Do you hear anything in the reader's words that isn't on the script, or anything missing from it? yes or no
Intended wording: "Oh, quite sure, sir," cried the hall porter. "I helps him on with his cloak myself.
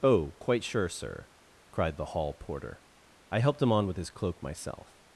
yes